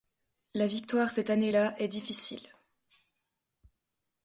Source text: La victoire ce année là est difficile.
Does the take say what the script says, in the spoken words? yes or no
no